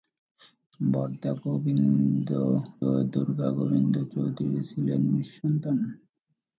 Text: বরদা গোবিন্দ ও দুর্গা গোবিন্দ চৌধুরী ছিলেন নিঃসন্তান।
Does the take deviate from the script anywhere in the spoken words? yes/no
no